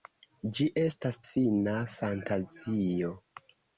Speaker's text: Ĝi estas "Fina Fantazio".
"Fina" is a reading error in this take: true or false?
false